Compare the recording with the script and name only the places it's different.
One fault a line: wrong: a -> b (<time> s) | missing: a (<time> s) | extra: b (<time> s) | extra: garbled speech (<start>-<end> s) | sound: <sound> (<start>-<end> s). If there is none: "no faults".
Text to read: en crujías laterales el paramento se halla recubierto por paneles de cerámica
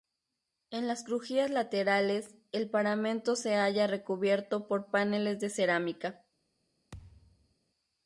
extra: las (0.9 s)
sound: thud (6.9-7.5 s)